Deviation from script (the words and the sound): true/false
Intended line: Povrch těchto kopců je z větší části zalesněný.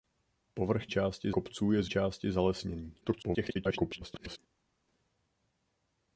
true